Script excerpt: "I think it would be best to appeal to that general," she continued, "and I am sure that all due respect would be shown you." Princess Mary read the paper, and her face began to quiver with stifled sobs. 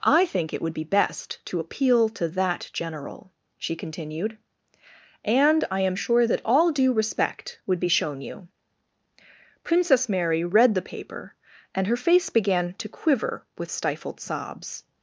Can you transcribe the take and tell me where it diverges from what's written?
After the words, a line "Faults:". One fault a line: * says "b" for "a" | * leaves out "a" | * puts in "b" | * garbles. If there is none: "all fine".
"I think it would be best to appeal to that general," she continued, "and I am sure that all due respect would be shown you." Princess Mary read the paper, and her face began to quiver with stifled sobs.
Faults:
all fine